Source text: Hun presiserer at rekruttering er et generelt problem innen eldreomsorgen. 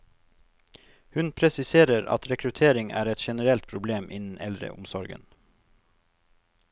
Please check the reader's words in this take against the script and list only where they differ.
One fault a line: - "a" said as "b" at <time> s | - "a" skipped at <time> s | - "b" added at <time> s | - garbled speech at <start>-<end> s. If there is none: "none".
none